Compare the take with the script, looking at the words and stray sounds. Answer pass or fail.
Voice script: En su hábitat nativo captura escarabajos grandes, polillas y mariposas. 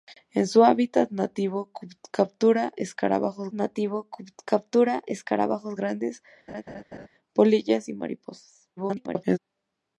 fail